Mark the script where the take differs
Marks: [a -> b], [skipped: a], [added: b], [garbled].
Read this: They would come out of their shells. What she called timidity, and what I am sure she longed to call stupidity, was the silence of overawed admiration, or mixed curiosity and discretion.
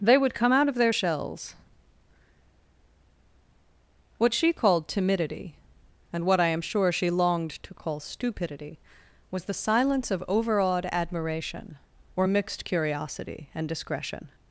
They would come out of their shells. What she called timidity, and what I am sure she longed to call stupidity, was the silence of overawed admiration, or mixed curiosity and discretion.